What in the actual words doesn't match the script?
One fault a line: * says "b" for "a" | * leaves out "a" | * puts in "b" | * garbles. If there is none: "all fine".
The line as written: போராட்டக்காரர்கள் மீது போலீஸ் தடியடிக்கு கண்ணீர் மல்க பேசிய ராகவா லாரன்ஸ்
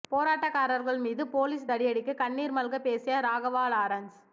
all fine